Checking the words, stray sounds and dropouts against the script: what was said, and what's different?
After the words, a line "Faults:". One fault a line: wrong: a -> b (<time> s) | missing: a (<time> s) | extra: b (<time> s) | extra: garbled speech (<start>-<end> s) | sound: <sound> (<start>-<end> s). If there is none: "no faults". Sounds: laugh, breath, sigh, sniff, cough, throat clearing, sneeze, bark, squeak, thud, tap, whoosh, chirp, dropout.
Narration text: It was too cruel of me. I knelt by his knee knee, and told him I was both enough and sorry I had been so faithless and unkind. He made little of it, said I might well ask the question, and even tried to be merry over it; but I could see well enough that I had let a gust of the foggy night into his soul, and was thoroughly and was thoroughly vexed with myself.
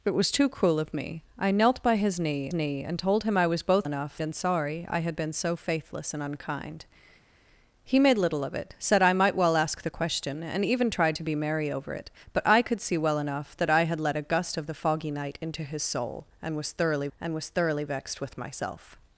It was too cruel of me. I knelt by his knee knee, and told him I was both enough and sorry I had been so faithless and unkind. He made little of it, said I might well ask the question, and even tried to be merry over it; but I could see well enough that I had let a gust of the foggy night into his soul, and was thoroughly and was thoroughly vexed with myself.
Faults:
no faults